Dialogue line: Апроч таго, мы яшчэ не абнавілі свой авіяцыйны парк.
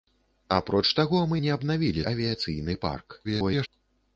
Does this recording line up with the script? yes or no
no